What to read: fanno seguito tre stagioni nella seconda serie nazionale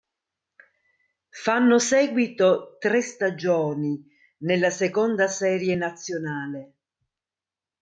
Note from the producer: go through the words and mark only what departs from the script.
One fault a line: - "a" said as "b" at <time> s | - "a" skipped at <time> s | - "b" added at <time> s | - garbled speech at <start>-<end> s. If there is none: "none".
none